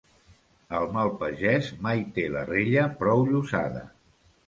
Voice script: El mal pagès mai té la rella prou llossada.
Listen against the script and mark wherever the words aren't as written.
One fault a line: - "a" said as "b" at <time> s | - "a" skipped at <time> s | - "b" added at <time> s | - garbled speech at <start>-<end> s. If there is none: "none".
none